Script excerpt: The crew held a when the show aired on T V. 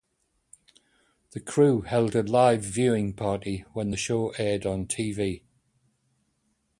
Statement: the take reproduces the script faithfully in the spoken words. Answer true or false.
false